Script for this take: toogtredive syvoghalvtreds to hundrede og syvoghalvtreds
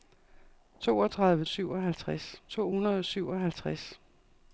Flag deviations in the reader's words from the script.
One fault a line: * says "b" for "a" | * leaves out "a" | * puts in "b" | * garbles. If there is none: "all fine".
all fine